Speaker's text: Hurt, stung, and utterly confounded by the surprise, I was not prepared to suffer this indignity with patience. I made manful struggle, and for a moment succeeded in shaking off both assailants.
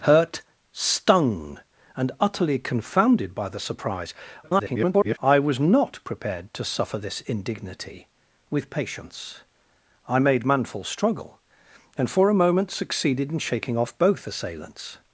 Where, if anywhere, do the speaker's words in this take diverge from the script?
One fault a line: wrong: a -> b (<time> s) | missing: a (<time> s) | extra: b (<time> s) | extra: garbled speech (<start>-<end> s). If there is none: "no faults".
extra: garbled speech (4.4-5.2 s)